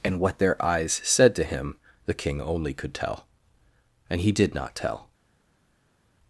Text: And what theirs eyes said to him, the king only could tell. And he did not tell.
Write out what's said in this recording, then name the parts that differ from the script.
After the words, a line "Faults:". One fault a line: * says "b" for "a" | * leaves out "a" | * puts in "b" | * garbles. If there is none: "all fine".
And what their eyes said to him, the king only could tell. And he did not tell.
Faults:
* says "their" for "theirs"